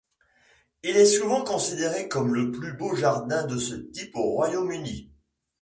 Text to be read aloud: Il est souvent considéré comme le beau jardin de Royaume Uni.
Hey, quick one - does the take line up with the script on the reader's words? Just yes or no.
no